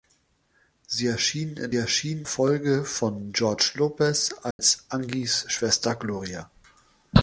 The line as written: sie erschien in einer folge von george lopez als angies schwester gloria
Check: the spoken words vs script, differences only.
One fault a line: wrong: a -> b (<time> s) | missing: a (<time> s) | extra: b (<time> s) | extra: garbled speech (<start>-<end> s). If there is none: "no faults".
wrong: einer -> erschien (1.7 s)